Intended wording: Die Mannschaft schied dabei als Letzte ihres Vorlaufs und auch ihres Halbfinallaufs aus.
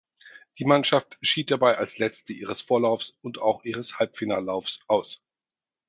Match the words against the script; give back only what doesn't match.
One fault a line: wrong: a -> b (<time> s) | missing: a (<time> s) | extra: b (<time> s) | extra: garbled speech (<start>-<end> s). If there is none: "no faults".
no faults